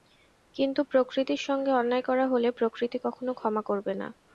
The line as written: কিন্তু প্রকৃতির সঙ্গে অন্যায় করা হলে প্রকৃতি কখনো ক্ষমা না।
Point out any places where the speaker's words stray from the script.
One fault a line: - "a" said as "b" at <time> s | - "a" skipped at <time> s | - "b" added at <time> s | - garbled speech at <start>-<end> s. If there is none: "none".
- "করবে" added at 3.7 s